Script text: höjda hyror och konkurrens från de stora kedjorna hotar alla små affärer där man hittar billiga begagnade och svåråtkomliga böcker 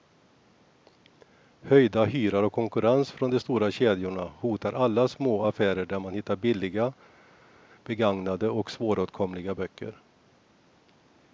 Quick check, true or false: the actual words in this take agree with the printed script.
true